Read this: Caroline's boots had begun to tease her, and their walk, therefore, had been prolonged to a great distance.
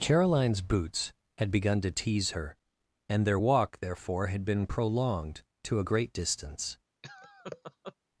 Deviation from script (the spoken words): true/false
false